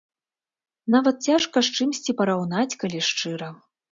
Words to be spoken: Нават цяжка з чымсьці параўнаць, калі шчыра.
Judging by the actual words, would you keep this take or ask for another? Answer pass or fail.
pass